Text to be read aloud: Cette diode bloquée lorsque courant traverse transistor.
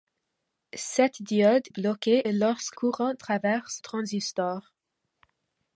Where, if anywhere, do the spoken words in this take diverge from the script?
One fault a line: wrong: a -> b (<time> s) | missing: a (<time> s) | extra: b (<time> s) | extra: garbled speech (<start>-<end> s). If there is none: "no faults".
no faults